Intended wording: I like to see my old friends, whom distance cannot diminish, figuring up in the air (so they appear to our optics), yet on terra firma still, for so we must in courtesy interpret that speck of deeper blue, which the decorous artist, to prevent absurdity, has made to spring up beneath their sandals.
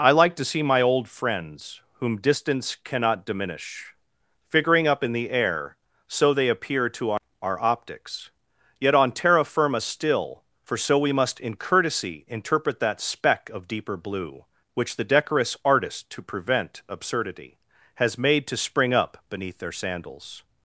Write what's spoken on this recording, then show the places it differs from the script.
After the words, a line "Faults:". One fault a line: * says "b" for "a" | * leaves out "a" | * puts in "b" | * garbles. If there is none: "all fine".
I like to see my old friends, whom distance cannot diminish, figuring up in the air (so they appear to our our optics), yet on terra firma still, for so we must in courtesy interpret that speck of deeper blue, which the decorous artist, to prevent absurdity, has made to spring up beneath their sandals.
Faults:
* puts in "our"